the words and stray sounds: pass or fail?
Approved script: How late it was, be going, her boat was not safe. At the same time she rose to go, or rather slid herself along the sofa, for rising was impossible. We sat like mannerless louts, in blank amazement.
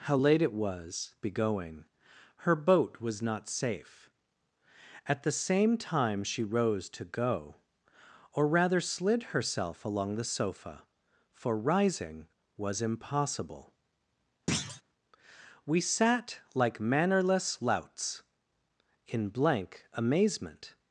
fail